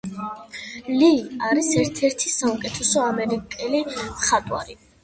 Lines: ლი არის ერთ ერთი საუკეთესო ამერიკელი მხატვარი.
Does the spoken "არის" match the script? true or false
true